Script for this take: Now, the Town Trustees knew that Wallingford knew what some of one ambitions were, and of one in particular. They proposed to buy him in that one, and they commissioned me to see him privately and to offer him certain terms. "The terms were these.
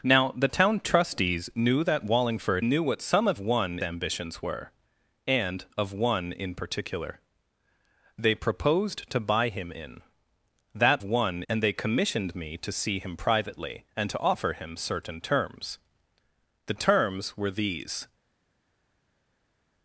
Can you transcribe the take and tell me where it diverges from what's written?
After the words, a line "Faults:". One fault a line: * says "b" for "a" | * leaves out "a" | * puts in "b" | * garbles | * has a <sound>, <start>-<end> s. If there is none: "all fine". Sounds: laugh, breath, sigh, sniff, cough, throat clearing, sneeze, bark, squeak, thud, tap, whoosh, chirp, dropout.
Now, the Town Trustees knew that Wallingford knew what some of one ambitions were, and of one in particular. They proposed to buy him in that one, and they commissioned me to see him privately and to offer him certain terms. "The terms were these.
Faults:
all fine